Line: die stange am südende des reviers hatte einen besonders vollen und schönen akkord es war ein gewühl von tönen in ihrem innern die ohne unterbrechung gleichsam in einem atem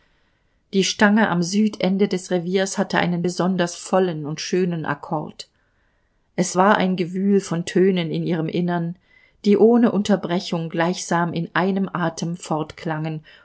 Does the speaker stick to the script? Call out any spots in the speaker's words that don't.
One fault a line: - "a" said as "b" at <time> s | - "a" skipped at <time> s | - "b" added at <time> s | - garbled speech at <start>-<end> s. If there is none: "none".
none